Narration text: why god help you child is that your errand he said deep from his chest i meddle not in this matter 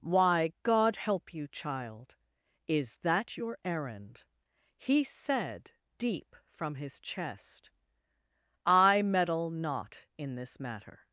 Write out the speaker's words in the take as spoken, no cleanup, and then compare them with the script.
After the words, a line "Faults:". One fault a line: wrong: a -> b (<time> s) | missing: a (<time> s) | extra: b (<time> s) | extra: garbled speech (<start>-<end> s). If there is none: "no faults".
why god help you child is that your errand he said deep from his chest i meddle not in this matter
Faults:
no faults